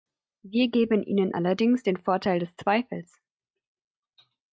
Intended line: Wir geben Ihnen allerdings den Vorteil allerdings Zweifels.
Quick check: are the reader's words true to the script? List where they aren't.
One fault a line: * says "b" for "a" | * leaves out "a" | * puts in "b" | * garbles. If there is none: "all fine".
* says "des" for "allerdings"